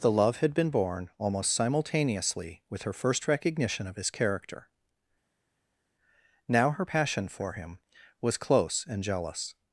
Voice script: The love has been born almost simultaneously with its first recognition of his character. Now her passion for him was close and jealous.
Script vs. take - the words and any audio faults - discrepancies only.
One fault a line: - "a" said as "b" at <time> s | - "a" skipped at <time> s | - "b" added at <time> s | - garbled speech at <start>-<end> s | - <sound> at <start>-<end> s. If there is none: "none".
- "has" said as "had" at 0.4 s
- "its" said as "her" at 2.8 s